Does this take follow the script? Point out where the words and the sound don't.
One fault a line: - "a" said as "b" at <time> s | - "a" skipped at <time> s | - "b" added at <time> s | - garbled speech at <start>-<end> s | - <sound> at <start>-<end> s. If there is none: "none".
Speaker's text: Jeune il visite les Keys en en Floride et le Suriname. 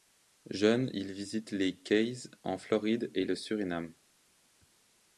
- "en" skipped at 2.6 s